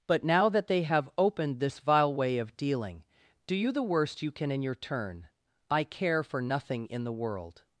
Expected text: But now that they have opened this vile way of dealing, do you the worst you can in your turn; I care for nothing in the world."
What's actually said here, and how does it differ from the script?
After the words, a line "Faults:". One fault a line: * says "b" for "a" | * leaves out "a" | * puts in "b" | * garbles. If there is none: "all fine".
But now that they have opened this vile way of dealing, do you the worst you can in your turn; I care for nothing in the world."
Faults:
all fine